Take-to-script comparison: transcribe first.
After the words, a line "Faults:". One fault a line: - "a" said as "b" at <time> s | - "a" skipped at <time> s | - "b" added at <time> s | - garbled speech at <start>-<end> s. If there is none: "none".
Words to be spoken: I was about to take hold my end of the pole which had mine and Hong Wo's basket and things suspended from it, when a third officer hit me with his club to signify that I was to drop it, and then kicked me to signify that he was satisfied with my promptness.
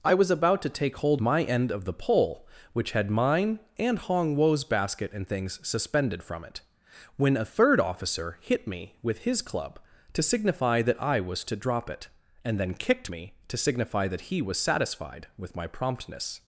I was about to take hold my end of the pole which had mine and Hong Wo's basket and things suspended from it, when a third officer hit me with his club to signify that I was to drop it, and then kicked me to signify that he was satisfied with my promptness.
Faults:
none